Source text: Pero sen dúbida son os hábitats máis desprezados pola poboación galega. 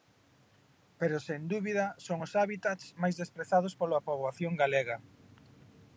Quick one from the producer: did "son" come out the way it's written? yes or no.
yes